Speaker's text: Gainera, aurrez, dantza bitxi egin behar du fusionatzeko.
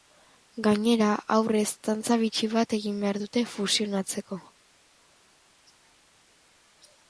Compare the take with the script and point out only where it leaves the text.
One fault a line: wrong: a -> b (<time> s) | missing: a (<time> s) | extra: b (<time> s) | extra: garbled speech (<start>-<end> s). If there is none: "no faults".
extra: bat (2.5 s)
wrong: du -> dute (3.2 s)